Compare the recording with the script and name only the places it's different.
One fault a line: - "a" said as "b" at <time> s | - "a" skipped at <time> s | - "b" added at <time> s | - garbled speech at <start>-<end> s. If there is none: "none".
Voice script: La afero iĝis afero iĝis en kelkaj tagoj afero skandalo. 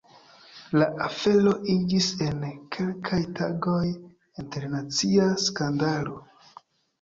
- "afero iĝis" skipped at 2.1 s
- "afero" said as "internacia" at 4.5 s